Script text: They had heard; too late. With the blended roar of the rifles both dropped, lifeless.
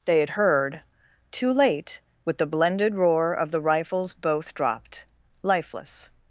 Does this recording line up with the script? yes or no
yes